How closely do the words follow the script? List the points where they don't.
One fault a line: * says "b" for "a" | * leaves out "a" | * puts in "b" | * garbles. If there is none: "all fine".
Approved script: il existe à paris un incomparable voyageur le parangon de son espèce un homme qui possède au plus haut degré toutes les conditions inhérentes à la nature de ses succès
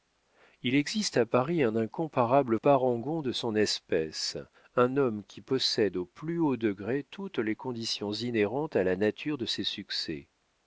* leaves out "voyageur le"